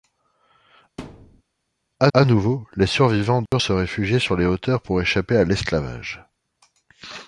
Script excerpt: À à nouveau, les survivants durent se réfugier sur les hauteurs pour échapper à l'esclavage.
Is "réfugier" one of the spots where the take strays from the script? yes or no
no